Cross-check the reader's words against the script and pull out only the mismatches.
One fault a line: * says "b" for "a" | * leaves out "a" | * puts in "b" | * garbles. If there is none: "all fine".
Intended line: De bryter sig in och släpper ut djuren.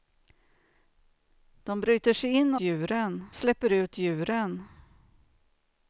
* says "djuren" for "och"